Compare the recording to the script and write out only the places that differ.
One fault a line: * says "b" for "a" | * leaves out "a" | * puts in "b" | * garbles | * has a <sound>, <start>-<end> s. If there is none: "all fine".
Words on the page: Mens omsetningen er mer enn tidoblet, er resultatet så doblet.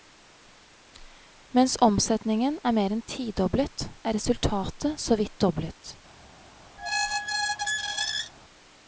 * puts in "vidt"
* has a squeak, 6.8-8.3 s